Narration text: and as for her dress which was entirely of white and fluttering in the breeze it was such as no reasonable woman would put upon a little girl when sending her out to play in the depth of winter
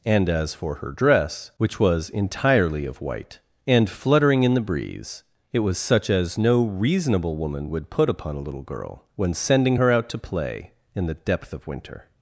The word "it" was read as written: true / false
true